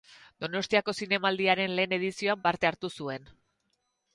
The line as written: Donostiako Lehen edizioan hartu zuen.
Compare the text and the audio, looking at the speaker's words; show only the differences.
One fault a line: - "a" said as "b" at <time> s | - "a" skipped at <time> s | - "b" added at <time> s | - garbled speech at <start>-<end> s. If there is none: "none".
- "Zinemaldiaren" added at 1.0 s
- "parte" added at 2.5 s